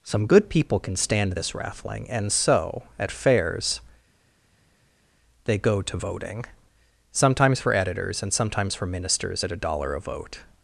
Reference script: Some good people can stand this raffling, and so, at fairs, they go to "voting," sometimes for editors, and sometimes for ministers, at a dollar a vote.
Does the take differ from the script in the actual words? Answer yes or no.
no